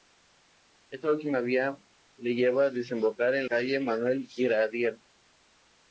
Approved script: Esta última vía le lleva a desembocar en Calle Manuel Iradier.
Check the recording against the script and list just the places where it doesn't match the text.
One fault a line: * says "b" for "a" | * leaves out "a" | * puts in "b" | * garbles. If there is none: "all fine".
all fine